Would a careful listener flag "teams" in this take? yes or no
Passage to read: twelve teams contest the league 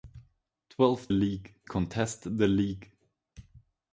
yes